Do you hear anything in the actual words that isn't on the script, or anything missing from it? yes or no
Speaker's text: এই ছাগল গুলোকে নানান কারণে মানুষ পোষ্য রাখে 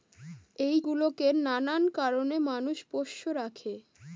yes